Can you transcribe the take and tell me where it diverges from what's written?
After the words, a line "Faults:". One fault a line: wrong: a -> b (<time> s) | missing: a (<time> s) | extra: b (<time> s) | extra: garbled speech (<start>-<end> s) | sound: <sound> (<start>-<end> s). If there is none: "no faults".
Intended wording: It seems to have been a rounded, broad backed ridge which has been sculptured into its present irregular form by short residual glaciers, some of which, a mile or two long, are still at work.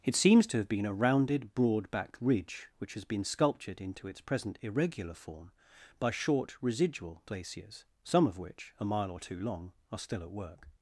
It seems to have been a rounded, broad backed ridge which has been sculptured into its present irregular form by short residual glaciers, some of which, a mile or two long, are still at work.
Faults:
no faults